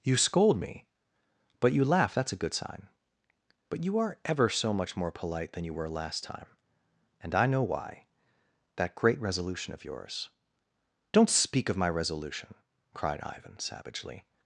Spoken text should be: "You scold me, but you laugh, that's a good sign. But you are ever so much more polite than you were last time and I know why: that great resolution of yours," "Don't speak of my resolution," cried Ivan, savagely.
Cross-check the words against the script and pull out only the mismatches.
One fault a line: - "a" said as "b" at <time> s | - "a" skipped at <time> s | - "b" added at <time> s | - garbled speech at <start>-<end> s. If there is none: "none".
none